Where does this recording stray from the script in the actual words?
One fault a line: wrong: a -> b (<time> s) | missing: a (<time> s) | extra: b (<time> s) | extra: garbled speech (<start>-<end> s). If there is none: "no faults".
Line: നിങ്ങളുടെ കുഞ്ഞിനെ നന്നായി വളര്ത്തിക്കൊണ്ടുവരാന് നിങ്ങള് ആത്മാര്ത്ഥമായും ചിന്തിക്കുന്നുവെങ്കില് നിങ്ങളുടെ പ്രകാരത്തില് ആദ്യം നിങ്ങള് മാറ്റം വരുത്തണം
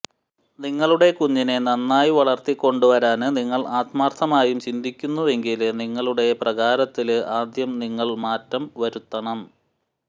no faults